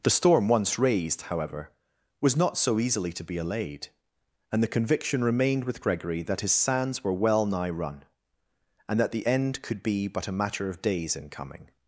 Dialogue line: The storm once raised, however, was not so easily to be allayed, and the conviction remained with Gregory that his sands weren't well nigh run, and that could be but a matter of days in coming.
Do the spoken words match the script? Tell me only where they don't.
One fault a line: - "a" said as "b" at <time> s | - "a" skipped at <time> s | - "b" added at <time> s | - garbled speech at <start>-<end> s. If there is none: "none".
- "weren't" said as "were" at 7.0 s
- "the end" added at 9.1 s